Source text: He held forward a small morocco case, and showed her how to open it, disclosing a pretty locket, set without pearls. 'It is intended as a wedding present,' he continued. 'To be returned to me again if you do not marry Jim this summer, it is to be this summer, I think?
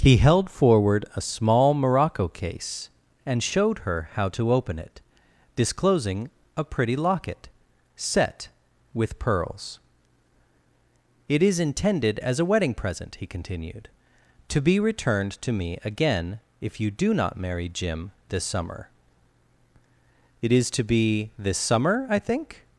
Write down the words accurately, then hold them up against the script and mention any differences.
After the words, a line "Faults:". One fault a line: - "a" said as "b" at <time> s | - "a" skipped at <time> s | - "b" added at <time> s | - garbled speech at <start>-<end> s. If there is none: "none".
He held forward a small morocco case, and showed her how to open it, disclosing a pretty locket, set with pearls. 'It is intended as a wedding present,' he continued. 'To be returned to me again if you do not marry Jim this summer, it is to be this summer, I think?
Faults:
- "without" said as "with" at 8.9 s